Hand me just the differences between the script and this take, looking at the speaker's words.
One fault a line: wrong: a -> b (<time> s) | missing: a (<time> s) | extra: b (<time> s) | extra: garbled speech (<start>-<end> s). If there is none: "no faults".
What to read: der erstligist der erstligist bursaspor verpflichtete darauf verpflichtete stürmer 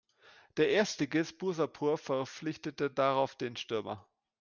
missing: der erstligist (1.4 s)
wrong: verpflichtete -> den (3.4 s)